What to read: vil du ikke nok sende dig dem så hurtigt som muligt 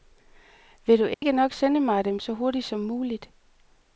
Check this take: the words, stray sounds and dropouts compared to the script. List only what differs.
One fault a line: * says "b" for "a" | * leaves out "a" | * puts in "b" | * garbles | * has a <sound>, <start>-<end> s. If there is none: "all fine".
* has a dropout, 1.1-1.2 s
* says "mig" for "dig"